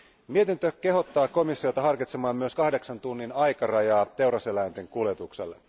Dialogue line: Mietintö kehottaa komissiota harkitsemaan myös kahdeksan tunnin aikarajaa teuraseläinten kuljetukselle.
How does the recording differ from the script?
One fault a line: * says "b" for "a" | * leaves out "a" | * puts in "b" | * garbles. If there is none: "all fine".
all fine